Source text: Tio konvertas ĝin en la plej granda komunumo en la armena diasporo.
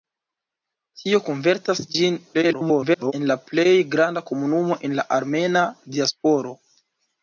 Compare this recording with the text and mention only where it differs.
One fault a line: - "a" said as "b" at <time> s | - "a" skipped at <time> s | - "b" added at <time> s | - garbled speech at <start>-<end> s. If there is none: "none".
- garbled speech at 2.3-3.1 s